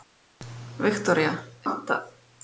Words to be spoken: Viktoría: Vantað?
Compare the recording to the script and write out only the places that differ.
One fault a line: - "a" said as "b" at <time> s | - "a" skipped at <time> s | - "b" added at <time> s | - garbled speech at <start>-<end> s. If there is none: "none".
none